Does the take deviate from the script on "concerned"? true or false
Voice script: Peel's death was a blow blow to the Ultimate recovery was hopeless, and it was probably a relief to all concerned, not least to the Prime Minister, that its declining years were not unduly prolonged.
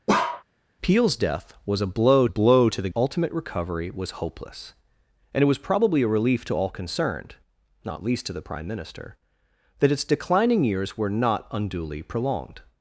false